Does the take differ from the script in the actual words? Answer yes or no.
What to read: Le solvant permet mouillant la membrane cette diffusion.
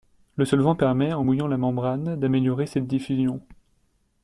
yes